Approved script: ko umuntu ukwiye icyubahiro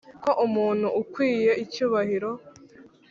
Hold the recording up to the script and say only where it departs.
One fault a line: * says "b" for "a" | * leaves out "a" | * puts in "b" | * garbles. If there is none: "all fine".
all fine